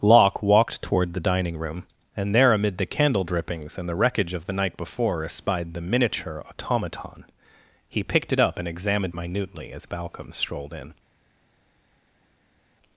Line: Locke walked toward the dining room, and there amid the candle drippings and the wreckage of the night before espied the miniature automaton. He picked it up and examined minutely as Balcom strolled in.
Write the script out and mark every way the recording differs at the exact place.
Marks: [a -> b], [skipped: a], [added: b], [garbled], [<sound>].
Locke walked toward the dining room, and there amid the candle drippings and the wreckage of the night before espied the miniature automaton. He picked it up and examined minutely as Balcom strolled in.